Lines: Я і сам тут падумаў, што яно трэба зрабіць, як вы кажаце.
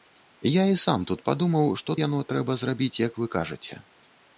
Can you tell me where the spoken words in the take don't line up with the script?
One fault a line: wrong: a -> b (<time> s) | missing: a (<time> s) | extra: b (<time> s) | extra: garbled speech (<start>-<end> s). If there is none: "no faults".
no faults